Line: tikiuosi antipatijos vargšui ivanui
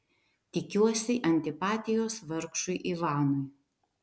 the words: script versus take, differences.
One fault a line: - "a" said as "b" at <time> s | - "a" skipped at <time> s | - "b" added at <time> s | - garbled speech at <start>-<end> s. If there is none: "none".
none